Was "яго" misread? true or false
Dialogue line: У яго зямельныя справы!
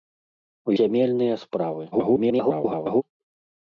true